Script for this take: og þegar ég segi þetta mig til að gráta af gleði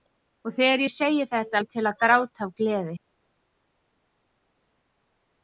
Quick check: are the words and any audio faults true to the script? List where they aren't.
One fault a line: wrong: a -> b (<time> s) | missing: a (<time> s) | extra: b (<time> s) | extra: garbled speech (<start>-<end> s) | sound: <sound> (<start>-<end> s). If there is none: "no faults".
no faults